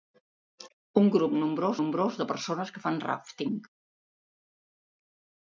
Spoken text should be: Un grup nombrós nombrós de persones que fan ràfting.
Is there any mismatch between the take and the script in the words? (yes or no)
no